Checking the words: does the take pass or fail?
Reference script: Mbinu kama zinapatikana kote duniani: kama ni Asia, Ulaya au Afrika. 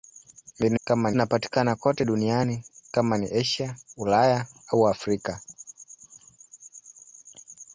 pass